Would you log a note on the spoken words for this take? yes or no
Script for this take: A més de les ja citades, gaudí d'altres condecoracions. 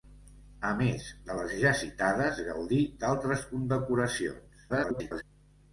yes